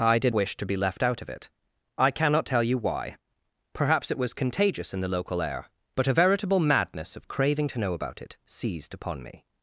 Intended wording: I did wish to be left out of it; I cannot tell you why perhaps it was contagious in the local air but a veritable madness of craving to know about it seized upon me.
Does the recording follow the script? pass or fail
pass